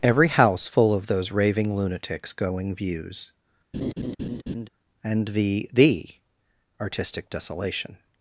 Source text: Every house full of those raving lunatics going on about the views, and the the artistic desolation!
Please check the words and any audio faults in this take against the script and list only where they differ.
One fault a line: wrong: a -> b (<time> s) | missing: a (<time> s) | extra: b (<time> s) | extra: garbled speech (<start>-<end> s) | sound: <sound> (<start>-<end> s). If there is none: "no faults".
missing: on about the (2.7 s)
sound: laugh (3.7-4.7 s)